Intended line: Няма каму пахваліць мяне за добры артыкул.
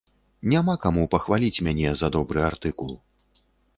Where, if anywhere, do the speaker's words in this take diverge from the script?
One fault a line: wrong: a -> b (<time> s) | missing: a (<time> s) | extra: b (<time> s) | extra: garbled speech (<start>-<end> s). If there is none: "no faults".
no faults